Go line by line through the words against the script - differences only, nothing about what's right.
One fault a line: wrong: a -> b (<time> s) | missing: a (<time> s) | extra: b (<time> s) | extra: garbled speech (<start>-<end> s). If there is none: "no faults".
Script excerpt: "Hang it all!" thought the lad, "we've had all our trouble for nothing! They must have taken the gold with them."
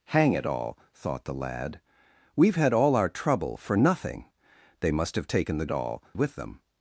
wrong: gold -> all (5.7 s)